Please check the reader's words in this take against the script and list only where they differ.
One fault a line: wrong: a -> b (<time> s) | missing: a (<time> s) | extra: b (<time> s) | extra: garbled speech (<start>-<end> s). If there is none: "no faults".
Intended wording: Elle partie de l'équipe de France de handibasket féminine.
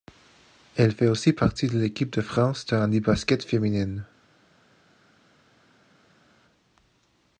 extra: fait aussi (0.9 s)